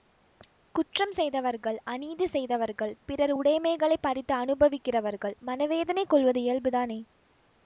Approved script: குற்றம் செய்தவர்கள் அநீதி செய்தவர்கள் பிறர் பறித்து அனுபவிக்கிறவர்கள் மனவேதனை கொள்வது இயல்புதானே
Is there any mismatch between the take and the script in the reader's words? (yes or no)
yes